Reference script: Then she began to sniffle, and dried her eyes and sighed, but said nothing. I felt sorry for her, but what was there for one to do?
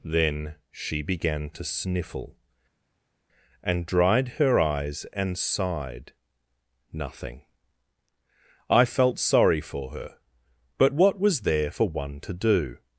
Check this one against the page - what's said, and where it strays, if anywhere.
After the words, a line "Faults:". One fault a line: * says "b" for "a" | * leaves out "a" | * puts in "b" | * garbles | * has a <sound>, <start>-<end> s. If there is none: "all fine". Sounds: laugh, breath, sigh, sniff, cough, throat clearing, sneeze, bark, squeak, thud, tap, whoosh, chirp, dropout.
Then she began to sniffle, and dried her eyes and sighed, nothing. I felt sorry for her, but what was there for one to do?
Faults:
* leaves out "but said"